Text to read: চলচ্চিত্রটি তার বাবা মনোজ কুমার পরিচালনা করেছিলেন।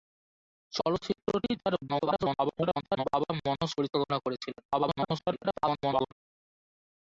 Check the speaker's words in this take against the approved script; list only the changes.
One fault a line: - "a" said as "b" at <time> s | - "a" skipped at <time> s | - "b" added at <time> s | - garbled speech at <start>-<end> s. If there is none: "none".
- garbled speech at 1.9-3.0 s
- "কুমার" skipped at 3.7 s
- garbled speech at 4.7-6.1 s